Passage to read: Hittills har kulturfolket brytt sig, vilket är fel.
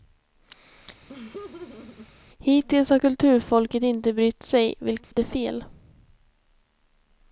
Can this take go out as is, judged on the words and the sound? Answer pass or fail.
fail